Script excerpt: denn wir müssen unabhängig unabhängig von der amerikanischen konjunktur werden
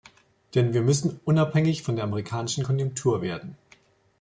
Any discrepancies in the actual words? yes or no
yes